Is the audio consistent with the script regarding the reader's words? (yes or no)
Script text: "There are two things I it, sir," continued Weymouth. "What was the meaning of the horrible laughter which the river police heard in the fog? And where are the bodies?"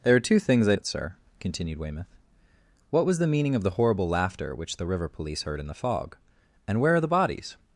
yes